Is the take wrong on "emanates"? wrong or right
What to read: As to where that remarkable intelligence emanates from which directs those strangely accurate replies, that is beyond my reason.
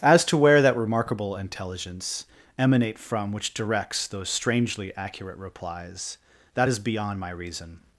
wrong